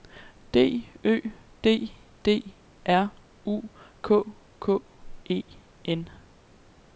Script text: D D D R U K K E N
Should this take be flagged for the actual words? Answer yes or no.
yes